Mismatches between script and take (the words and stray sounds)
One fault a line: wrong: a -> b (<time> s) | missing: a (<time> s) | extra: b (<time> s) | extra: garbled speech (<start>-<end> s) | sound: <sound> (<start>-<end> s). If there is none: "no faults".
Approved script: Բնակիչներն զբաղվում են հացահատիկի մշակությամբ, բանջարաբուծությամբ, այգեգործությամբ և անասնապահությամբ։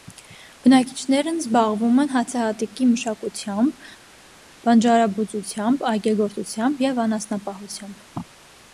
no faults